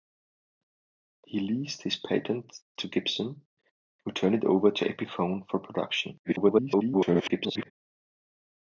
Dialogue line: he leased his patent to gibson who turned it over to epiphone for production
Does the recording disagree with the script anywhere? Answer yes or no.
yes